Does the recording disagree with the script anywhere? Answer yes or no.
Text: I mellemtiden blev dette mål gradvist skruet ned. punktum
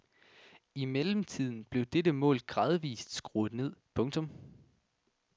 no